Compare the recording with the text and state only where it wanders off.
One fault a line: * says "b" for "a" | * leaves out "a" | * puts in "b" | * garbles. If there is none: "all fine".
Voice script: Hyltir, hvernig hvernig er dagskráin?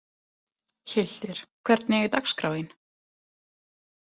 * leaves out "hvernig"